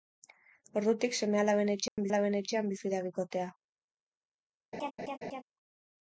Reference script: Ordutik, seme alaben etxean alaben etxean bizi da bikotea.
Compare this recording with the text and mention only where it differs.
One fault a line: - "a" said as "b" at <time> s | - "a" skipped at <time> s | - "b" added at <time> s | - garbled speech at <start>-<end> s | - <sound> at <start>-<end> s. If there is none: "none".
- dropout at 1.9-2.0 s
- laugh at 4.7-5.4 s